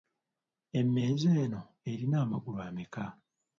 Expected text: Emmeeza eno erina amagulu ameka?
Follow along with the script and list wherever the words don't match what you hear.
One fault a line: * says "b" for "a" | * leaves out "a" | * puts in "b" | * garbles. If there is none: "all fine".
all fine